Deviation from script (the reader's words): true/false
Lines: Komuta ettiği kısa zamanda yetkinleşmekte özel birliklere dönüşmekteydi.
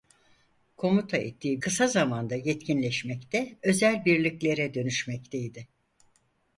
false